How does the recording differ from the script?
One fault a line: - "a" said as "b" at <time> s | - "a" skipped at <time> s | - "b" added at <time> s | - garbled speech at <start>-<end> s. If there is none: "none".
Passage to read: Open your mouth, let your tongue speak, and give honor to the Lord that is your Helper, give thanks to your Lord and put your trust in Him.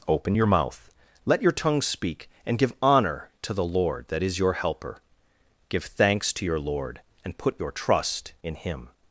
none